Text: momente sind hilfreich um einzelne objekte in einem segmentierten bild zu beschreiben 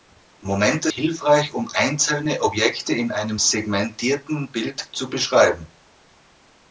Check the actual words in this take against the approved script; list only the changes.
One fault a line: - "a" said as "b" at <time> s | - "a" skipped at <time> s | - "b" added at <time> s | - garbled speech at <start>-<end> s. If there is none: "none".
- "sind" skipped at 0.9 s